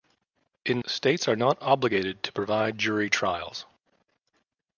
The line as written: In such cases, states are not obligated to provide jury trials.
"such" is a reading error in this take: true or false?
true